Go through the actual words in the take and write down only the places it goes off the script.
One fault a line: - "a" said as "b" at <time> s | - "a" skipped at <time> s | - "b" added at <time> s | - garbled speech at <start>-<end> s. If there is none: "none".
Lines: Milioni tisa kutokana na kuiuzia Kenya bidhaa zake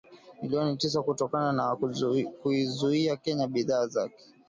none